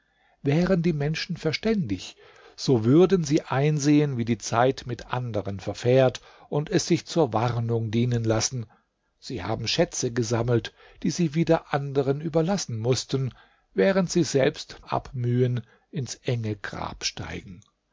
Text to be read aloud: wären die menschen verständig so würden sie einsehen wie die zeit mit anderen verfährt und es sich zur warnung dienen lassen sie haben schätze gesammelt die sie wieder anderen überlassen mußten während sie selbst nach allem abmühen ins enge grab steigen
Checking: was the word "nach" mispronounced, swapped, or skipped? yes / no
yes